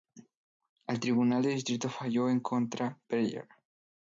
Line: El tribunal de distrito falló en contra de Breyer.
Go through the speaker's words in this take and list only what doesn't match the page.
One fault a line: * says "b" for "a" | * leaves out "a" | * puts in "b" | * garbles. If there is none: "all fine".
* leaves out "de"